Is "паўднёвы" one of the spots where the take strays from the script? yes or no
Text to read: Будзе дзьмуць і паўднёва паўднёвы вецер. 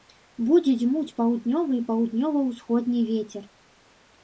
yes